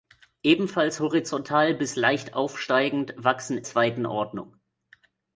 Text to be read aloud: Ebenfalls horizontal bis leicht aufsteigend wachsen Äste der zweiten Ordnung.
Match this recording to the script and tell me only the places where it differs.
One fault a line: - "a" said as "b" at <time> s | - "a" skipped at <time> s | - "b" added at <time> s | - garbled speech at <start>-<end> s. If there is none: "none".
- "Äste der" skipped at 3.6 s